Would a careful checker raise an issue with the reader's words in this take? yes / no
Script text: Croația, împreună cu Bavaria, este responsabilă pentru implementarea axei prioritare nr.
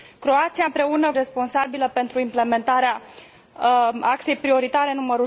yes